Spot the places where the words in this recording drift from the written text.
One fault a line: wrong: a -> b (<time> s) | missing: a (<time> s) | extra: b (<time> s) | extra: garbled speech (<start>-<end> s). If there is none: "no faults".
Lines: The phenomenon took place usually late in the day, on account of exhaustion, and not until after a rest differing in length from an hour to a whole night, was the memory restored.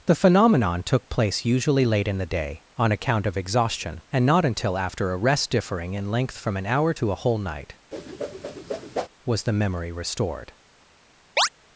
no faults